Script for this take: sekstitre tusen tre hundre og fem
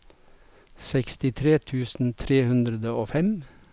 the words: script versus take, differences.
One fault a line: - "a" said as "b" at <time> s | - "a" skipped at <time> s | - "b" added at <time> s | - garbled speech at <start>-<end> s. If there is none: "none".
none